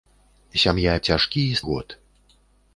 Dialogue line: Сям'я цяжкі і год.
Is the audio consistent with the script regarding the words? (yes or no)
yes